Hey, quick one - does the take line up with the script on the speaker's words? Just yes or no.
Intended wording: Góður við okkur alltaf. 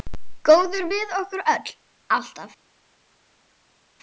no